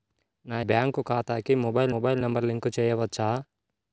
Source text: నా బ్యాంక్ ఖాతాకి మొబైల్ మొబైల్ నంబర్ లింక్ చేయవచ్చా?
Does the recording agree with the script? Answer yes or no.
yes